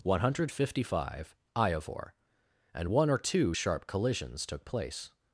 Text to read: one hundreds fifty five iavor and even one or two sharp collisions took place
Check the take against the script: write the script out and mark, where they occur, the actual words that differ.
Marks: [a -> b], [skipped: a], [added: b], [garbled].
one [hundreds -> hundred] fifty five iavor and [skipped: even] one or two sharp collisions took place